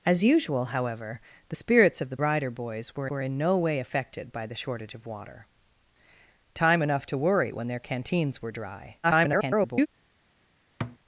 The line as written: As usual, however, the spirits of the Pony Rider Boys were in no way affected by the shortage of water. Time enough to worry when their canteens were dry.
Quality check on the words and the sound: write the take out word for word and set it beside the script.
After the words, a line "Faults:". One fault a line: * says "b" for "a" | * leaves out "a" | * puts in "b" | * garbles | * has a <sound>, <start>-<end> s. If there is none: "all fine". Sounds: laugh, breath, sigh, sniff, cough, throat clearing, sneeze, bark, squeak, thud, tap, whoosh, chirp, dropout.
As usual, however, the spirits of the Rider Boys were were in no way affected by the shortage of water. Time enough to worry when their canteens were dry. [garbled]
Faults:
* leaves out "Pony"
* puts in "were"
* garbles
* has a thud, 10.8-11.0 s